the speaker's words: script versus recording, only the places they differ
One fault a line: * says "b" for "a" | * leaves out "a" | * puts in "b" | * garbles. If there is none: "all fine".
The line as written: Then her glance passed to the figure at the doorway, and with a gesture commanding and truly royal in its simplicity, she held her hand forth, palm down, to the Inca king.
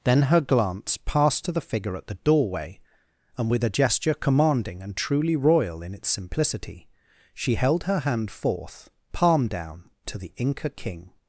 all fine